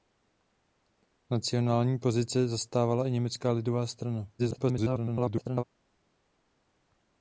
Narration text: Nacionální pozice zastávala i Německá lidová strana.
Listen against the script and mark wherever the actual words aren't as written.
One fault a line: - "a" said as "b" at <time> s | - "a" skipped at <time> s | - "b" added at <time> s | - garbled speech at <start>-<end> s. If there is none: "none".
- garbled speech at 4.4-5.6 s